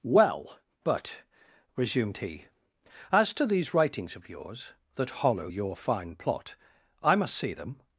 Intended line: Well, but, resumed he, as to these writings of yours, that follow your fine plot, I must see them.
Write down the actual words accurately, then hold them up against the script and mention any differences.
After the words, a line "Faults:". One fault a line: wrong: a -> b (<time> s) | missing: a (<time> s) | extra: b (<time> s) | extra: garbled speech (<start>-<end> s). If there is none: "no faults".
Well, but, resumed he, as to these writings of yours, that hollow your fine plot, I must see them.
Faults:
wrong: follow -> hollow (5.2 s)